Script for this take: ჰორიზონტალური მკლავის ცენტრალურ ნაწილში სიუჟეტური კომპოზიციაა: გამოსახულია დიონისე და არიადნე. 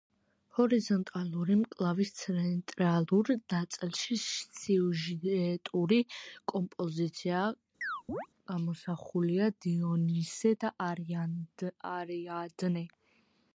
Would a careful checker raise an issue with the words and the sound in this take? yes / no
yes